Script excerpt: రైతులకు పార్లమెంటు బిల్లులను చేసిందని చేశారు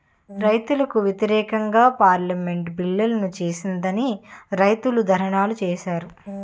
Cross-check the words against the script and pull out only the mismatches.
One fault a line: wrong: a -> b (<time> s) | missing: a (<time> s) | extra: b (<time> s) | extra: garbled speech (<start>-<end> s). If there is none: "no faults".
extra: వ్యతిరేకంగా (1.1 s)
extra: రైతులు ధర్నాలు (4.5 s)